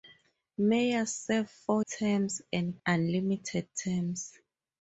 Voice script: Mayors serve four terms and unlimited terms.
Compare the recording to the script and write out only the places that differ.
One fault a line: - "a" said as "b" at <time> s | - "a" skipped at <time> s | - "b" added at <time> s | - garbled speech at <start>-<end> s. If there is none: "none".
none